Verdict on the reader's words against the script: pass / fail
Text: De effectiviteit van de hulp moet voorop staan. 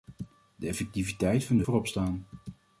fail